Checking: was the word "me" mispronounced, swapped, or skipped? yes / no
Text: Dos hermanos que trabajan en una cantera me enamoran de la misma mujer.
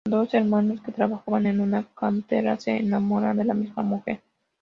yes